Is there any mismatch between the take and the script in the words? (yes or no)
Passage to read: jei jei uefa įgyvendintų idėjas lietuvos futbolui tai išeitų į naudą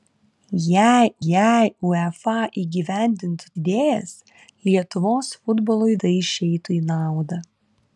no